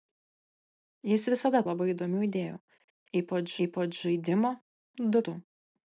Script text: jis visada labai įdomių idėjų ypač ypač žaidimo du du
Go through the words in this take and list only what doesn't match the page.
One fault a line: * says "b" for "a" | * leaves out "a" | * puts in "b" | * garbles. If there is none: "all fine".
all fine